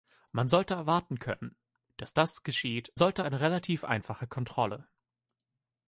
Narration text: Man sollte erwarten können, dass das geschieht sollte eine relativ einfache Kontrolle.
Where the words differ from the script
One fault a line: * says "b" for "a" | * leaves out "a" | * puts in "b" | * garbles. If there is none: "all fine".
all fine